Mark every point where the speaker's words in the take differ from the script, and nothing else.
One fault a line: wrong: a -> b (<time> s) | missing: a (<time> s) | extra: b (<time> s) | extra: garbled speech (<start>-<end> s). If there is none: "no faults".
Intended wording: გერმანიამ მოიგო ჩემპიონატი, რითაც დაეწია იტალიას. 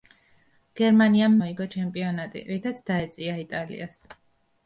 no faults